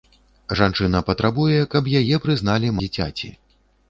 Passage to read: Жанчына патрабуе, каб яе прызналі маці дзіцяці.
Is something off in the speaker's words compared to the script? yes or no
yes